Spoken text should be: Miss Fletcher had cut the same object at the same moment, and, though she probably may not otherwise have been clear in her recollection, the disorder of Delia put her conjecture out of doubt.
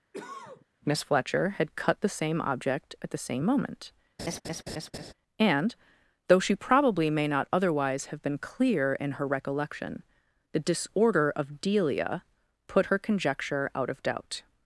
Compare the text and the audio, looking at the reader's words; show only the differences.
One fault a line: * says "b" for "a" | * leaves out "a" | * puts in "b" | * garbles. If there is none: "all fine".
all fine